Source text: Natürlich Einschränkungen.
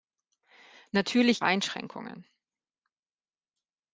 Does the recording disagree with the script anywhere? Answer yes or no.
no